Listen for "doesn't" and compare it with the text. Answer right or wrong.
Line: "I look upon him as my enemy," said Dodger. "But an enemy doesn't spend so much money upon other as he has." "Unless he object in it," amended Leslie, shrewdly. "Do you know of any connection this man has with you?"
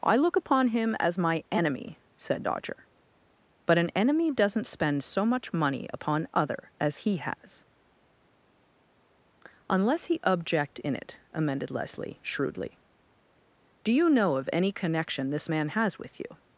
right